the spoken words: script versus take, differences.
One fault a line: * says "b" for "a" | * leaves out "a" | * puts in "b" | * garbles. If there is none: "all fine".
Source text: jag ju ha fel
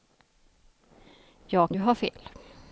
all fine